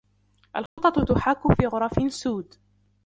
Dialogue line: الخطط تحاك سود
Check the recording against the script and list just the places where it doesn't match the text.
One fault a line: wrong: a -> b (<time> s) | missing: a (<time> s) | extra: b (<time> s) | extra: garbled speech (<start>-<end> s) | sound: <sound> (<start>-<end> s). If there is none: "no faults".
sound: dropout (0.7-0.8 s)
extra: في غرف (1.5 s)